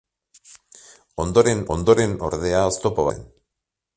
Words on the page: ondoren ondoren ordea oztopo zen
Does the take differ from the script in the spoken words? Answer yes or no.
no